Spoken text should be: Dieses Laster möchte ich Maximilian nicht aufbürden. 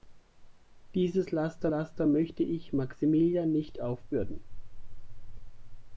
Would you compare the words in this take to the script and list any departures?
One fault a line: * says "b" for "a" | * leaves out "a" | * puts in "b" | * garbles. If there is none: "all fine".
* puts in "Laster"